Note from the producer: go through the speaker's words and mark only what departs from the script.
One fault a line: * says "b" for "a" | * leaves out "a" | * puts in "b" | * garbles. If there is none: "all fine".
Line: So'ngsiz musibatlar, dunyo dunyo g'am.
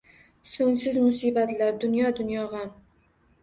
all fine